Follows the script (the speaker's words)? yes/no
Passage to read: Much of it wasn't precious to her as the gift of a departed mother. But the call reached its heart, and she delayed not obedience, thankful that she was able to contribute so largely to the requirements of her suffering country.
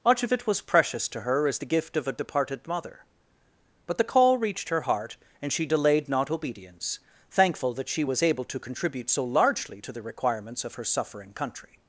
no